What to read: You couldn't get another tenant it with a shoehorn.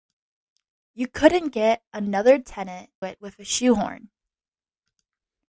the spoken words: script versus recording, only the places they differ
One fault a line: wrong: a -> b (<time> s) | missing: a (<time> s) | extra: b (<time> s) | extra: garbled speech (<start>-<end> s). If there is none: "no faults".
no faults